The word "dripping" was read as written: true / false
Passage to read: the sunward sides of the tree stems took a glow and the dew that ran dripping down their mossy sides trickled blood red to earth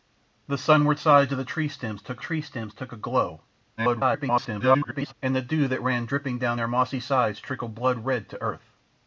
true